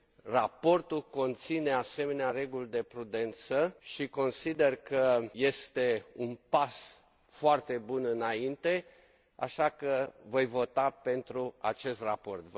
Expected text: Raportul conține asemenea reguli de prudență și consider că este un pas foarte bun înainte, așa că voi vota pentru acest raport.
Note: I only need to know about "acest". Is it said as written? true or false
true